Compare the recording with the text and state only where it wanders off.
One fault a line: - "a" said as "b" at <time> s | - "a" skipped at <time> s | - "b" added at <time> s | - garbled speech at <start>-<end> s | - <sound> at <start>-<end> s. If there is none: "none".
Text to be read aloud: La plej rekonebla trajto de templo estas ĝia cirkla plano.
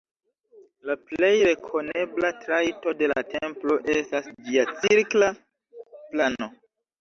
- "la" added at 3.1 s